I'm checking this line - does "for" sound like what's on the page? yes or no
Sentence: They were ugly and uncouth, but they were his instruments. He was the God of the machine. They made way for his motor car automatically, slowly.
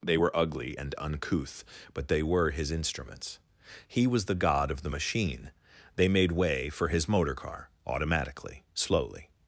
yes